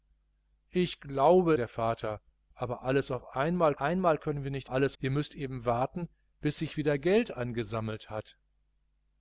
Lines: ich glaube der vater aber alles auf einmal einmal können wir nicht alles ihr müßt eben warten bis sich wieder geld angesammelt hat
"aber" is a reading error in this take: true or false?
false